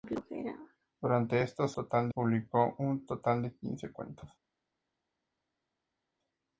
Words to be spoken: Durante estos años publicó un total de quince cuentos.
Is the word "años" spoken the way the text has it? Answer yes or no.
no